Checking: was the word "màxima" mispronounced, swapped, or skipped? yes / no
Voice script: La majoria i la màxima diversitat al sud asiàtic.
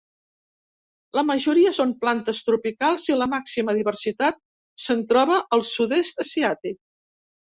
no